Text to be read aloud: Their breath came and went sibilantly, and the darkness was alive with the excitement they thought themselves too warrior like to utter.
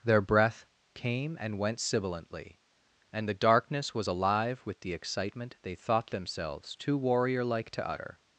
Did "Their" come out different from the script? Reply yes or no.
no